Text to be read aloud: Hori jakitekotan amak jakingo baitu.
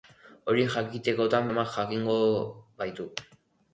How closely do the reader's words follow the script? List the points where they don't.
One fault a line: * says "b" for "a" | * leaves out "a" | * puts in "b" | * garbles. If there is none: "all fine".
all fine